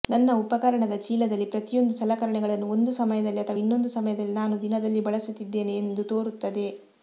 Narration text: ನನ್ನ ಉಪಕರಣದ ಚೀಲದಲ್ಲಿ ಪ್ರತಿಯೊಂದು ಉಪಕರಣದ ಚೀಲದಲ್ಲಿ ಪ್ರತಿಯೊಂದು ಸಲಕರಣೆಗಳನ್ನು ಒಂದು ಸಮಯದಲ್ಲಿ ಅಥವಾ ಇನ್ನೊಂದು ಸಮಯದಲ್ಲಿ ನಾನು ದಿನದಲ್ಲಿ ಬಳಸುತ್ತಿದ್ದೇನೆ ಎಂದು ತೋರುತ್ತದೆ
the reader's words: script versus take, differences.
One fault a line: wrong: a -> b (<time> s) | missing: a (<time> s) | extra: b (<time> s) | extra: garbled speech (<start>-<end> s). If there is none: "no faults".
missing: ಉಪಕರಣದ ಚೀಲದಲ್ಲಿ ಪ್ರತಿಯೊಂದು (1.9 s)